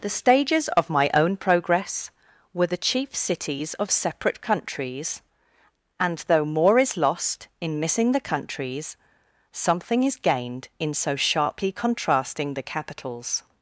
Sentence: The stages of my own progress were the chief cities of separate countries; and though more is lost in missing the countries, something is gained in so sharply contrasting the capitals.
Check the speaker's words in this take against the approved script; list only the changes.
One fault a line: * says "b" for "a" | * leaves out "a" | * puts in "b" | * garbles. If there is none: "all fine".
all fine